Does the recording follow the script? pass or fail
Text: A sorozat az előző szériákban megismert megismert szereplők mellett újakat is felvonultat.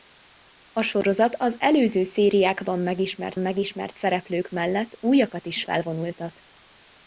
pass